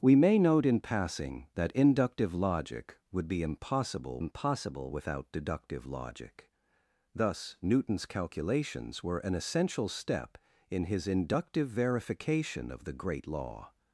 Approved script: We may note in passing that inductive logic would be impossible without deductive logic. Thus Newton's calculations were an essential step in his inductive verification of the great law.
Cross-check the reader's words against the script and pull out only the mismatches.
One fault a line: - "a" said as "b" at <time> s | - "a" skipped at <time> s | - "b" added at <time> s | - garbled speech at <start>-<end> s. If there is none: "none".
- "impossible" added at 4.2 s